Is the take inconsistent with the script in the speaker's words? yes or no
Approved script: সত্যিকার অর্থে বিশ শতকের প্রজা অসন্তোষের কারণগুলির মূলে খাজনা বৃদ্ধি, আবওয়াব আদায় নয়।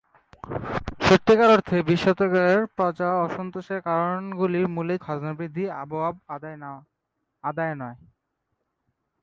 no